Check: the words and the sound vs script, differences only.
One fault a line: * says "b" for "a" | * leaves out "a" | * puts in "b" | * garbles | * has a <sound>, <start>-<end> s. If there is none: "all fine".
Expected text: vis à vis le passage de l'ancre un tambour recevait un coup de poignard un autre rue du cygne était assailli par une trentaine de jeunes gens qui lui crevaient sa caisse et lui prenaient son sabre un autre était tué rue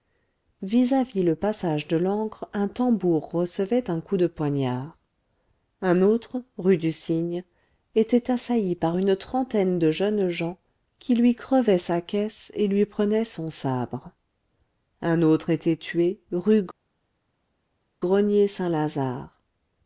all fine